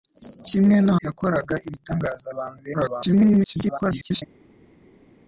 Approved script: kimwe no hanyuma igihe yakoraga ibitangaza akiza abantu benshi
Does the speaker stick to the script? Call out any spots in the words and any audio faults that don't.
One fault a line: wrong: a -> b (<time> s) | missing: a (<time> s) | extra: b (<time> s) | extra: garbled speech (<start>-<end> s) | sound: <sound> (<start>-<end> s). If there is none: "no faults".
missing: hanyuma igihe (0.9 s)
missing: akiza (2.3 s)
extra: garbled speech (2.7-4.2 s)